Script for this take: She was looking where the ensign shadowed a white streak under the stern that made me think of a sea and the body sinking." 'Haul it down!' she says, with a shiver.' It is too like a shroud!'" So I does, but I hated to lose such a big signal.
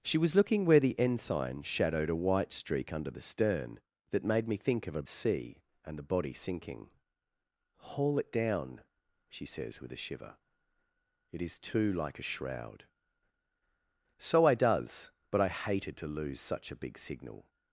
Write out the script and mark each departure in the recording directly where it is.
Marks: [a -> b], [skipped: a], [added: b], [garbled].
She was looking where the ensign shadowed a white streak under the stern that made me think of a sea and the body sinking." 'Haul it down!' she says, with a shiver.' It is too like a shroud!'" So I does, but I hated to lose such a big signal.